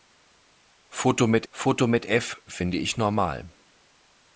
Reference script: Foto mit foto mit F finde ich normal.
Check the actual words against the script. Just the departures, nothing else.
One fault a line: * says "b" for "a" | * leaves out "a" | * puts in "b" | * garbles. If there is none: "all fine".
all fine